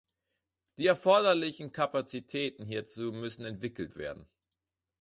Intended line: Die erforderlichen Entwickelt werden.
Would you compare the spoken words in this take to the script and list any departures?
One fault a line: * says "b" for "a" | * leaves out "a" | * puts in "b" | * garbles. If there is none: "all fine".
* puts in "Kapazitäten hierzu müssen"